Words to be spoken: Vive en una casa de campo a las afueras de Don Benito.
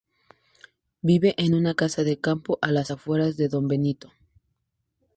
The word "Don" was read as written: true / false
true